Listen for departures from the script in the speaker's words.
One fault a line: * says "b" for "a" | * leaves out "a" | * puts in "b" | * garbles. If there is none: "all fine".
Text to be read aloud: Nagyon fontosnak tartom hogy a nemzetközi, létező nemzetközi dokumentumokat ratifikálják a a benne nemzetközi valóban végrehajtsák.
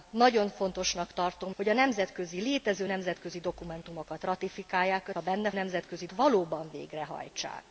all fine